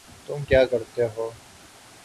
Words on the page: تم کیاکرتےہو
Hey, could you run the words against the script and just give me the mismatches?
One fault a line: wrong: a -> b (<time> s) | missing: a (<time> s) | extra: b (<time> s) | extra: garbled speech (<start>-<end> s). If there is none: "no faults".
no faults